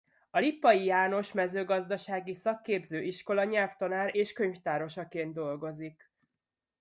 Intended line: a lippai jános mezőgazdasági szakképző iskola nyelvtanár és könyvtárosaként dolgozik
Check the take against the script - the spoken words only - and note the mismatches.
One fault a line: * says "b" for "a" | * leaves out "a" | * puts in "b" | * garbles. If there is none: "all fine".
all fine